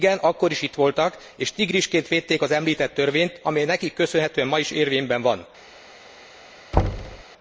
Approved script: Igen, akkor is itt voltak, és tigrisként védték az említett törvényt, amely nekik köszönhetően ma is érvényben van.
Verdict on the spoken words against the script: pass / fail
pass